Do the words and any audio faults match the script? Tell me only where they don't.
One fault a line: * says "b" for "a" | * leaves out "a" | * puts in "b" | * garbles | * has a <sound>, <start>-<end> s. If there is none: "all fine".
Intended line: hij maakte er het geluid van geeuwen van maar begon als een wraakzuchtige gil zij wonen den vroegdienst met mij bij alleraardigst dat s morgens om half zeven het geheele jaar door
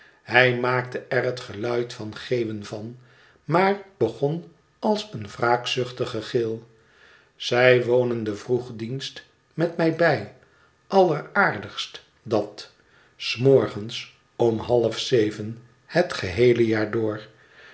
all fine